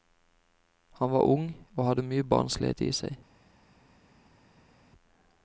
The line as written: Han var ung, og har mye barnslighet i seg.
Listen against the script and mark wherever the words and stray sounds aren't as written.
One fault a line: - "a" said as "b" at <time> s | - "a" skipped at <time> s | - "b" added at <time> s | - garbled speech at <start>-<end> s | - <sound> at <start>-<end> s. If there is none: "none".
- "har" said as "hadde" at 1.9 s